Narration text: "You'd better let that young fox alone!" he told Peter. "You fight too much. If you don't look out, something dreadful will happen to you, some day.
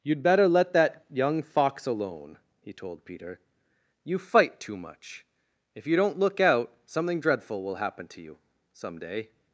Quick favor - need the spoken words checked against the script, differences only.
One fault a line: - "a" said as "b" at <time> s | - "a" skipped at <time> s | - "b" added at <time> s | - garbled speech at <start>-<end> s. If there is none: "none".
none